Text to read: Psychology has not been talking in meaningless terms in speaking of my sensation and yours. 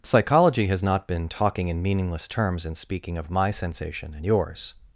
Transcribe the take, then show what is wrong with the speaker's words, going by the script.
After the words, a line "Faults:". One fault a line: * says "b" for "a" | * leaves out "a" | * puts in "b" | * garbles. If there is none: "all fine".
Psychology has not been talking in meaningless terms in speaking of my sensation and yours.
Faults:
all fine